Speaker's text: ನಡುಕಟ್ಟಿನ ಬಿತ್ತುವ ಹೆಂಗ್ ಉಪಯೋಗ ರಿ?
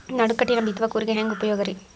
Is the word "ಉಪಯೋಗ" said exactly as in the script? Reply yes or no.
yes